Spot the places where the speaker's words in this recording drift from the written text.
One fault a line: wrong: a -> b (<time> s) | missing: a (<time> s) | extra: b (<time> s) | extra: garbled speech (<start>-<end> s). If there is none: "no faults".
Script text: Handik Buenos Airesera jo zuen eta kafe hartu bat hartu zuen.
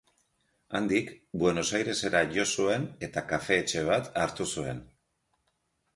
wrong: hartu -> etxe (3.6 s)